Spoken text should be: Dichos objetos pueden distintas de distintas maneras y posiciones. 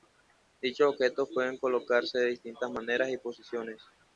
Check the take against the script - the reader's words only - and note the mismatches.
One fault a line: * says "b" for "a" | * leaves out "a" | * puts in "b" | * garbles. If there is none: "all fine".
* says "colocarse" for "distintas"